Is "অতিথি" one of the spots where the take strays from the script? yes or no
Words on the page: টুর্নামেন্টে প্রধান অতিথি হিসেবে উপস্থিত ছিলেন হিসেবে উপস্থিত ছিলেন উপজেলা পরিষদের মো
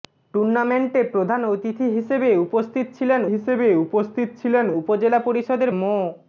no